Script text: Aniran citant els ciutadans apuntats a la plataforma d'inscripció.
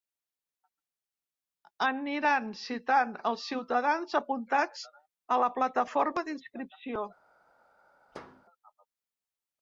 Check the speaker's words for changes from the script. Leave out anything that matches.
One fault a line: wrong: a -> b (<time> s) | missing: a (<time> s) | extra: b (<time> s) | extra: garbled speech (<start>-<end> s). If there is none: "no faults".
no faults